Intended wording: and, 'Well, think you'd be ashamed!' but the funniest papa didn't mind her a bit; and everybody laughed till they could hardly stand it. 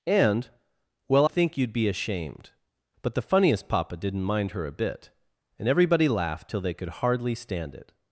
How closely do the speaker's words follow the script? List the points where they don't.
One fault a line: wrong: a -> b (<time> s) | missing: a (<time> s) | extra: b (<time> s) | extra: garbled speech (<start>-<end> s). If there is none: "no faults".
no faults